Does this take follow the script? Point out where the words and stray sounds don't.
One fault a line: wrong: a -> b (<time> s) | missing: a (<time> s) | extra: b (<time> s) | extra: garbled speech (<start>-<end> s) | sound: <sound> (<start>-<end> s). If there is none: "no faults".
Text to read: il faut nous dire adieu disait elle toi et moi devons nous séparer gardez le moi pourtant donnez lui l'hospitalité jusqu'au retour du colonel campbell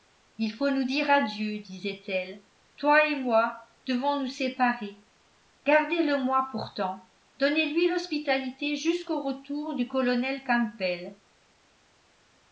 no faults